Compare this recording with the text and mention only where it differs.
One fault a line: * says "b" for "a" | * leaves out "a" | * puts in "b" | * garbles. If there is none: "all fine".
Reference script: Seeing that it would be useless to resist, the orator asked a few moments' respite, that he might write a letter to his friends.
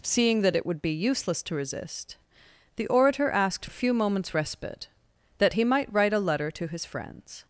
all fine